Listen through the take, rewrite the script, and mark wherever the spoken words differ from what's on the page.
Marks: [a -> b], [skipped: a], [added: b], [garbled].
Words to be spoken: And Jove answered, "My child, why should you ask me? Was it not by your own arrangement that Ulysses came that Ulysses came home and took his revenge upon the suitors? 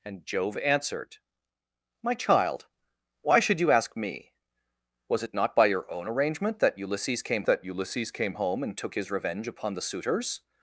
And Jove answered, "My child, why should you ask me? Was it not by your own arrangement that Ulysses came that Ulysses came home and took his revenge upon the suitors?